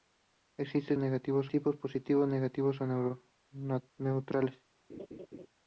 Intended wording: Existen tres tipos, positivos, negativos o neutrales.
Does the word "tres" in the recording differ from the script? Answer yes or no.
yes